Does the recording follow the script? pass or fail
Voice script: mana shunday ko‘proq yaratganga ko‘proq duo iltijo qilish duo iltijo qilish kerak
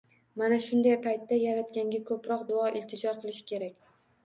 fail